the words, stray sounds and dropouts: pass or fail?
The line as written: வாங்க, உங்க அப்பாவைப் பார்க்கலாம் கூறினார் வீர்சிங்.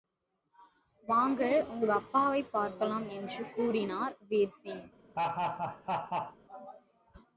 fail